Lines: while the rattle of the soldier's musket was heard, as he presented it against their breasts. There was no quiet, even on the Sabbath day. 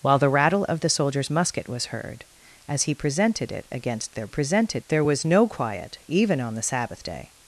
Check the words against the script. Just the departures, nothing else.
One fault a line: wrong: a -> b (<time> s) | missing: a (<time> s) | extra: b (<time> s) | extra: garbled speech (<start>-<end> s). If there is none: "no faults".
wrong: breasts -> presented (4.3 s)